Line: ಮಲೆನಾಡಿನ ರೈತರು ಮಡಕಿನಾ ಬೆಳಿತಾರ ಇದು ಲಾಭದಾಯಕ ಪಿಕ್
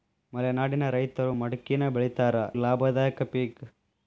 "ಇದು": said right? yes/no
no